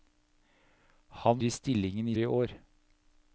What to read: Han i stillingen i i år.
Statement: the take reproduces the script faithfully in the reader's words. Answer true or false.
true